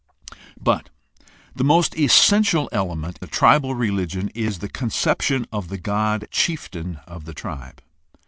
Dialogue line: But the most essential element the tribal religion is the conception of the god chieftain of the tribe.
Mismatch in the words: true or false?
false